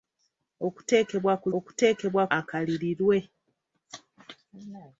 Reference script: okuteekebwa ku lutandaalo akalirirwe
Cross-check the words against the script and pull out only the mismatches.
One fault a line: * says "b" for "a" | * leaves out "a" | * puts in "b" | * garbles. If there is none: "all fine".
* says "okuteekebwa" for "lutandaalo"